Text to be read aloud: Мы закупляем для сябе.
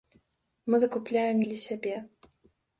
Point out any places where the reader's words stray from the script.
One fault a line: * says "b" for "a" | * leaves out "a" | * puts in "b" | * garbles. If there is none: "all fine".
all fine